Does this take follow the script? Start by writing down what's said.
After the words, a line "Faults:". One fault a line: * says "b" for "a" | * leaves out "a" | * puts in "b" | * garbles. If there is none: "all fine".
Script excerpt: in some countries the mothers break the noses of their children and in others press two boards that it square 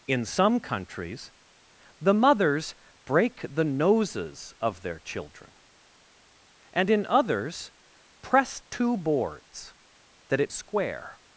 in some countries the mothers break the noses of their children and in others press two boards that it square
Faults:
all fine